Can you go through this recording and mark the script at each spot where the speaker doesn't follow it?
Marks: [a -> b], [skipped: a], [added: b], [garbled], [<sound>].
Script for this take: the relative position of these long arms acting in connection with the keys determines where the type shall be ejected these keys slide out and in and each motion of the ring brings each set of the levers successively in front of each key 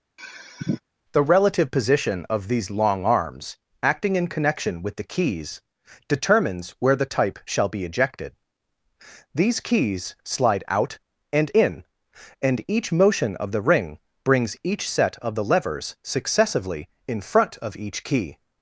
[sigh] the relative position of these long arms acting in connection with the keys determines where the type shall be ejected these keys slide out and in and each motion of the ring brings each set of the levers successively in front of each key